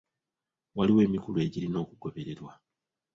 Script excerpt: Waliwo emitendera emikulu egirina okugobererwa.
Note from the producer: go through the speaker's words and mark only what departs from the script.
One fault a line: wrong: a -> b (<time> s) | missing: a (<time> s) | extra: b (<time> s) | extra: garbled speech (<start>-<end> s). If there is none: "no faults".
missing: emitendera (1.0 s)